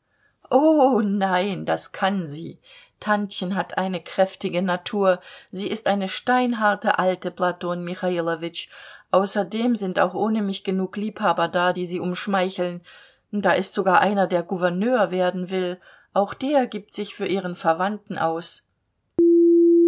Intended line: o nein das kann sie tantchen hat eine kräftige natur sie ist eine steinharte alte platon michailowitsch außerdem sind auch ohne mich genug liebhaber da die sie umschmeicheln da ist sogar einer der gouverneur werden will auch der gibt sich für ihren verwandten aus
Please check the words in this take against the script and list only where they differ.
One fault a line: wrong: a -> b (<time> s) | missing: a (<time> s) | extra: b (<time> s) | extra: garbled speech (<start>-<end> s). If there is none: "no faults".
no faults